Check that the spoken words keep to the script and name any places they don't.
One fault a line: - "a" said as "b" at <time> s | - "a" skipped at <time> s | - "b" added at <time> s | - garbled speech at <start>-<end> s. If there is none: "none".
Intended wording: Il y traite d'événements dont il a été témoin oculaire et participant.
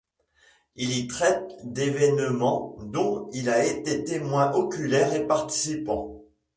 none